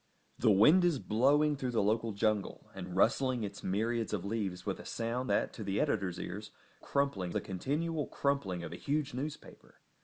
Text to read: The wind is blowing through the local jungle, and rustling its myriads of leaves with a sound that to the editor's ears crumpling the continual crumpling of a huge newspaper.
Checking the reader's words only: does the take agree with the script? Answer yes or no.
yes